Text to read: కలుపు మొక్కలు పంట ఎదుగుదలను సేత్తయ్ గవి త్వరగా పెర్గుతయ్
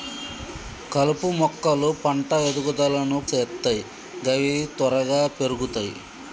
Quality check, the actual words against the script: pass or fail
pass